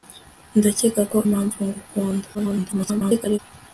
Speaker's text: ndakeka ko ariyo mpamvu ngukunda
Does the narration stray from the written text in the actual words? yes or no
yes